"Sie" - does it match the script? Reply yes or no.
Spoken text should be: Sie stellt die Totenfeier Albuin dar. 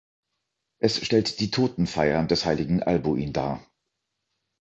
no